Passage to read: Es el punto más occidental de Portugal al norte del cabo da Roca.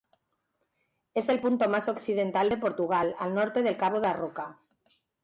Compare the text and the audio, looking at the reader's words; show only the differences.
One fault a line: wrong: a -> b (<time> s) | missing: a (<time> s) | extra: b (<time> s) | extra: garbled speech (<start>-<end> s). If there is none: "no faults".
no faults